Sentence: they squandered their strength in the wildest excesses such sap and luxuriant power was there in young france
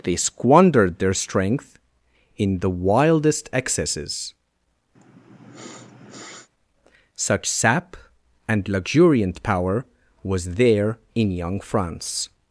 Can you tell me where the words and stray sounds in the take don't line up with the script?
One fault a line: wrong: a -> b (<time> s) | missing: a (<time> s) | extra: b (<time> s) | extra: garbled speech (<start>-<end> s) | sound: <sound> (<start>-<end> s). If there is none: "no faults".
sound: sniff (5.0-6.5 s)